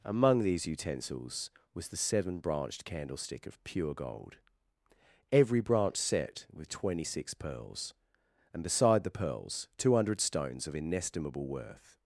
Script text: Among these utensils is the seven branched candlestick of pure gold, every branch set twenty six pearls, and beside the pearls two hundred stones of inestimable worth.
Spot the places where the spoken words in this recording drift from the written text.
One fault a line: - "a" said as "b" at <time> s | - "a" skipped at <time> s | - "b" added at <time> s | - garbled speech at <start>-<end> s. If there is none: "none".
- "is" said as "was" at 1.8 s
- "with" added at 6.5 s